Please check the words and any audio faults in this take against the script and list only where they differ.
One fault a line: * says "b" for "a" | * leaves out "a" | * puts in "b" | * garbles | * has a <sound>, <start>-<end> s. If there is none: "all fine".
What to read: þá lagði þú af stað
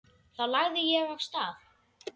* says "ég" for "þú"